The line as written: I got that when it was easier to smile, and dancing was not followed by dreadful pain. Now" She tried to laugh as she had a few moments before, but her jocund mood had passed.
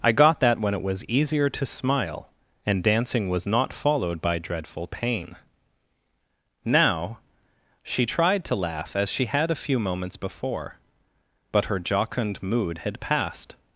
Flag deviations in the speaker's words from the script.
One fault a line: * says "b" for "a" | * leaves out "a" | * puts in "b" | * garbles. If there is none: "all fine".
all fine